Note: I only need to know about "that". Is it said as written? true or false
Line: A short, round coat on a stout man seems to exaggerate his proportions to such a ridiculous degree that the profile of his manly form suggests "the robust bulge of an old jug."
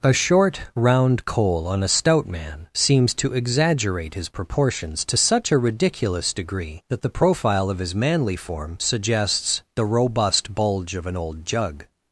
true